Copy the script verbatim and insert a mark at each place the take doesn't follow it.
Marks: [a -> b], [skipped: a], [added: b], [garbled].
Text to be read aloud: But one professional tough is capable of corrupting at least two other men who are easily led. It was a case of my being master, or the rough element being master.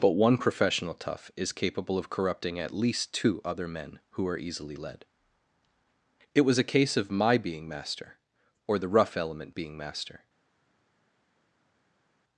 But one professional tough is capable of corrupting at least two other men who are easily led. It was a case of my being master, or the rough element being master.